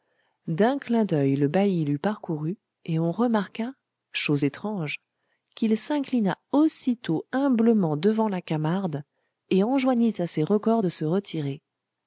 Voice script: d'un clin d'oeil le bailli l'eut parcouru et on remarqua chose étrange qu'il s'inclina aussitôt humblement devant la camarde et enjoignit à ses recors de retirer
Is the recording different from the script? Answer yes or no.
yes